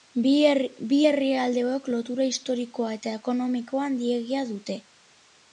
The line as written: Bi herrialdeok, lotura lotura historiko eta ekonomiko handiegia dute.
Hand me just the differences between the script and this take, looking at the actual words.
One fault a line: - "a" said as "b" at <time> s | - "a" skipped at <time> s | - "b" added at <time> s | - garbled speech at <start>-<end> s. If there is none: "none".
- "lotura" skipped at 2.3 s